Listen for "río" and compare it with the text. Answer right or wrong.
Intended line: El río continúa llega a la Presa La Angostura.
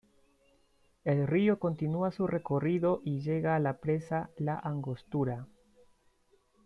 right